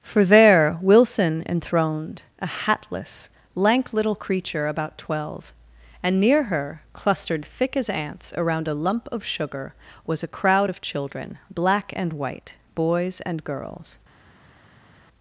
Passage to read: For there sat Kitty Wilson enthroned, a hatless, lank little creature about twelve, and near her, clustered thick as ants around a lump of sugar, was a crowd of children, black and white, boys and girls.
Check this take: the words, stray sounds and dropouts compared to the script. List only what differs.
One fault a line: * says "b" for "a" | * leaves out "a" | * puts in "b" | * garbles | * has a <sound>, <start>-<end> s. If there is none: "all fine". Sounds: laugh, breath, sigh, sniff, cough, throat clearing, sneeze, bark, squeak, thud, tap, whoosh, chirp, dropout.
* leaves out "sat Kitty"